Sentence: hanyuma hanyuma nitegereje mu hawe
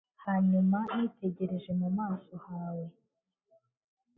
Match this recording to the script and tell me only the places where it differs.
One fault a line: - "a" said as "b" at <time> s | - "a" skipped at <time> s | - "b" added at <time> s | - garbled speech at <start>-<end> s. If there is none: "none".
- "hanyuma" skipped at 0.8 s
- "maso" added at 2.0 s